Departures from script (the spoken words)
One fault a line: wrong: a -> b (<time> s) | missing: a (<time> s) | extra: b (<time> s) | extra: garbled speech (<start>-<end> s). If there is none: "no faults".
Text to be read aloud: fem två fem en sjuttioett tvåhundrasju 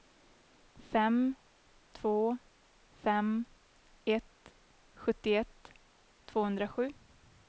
wrong: en -> ett (4.1 s)